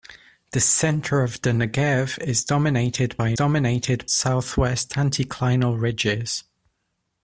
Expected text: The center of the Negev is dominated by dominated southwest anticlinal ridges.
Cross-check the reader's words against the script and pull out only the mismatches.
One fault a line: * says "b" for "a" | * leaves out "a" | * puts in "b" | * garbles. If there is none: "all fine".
all fine